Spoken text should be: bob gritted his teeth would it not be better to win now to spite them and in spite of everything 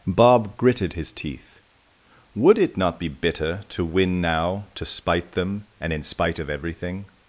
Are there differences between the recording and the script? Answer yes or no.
yes